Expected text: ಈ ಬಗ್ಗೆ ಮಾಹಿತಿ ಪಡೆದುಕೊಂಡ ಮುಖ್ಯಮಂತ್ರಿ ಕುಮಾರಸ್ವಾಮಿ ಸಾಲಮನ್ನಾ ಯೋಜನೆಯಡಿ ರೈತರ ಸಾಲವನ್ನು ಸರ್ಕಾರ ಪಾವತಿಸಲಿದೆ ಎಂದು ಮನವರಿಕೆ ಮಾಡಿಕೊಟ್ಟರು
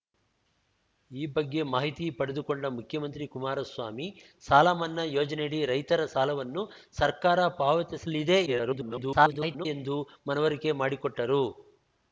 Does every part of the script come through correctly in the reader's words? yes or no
no